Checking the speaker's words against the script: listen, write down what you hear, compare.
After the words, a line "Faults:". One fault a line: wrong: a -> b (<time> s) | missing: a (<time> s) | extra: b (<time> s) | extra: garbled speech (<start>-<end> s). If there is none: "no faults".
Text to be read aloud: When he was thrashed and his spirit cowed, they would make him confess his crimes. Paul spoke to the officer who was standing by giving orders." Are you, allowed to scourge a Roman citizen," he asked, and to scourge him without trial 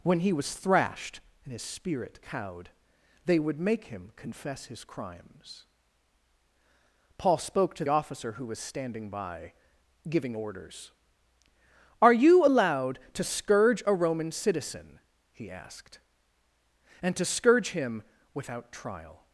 When he was thrashed and his spirit cowed, they would make him confess his crimes. Paul spoke to officer who was standing by giving orders." Are you, allowed to scourge a Roman citizen," he asked, and to scourge him without trial
Faults:
missing: the (7.8 s)